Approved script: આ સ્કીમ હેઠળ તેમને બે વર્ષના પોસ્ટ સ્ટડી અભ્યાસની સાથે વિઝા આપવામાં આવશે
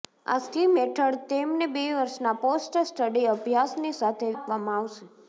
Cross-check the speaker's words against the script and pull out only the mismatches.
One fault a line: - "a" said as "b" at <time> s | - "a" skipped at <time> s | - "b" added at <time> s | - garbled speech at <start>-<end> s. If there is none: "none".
- "વિઝા" skipped at 4.3 s